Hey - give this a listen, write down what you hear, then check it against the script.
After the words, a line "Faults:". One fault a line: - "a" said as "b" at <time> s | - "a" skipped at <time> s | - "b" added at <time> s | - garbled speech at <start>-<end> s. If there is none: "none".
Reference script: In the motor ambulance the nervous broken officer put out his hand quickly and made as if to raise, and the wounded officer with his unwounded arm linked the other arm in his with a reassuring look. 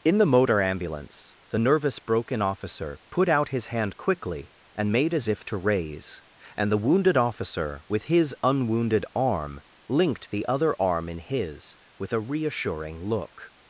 In the motor ambulance the nervous broken officer put out his hand quickly and made as if to raise, and the wounded officer with his unwounded arm linked the other arm in his with a reassuring look.
Faults:
none